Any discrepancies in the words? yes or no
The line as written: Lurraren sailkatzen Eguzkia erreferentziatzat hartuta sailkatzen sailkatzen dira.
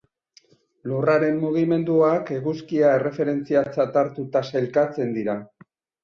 yes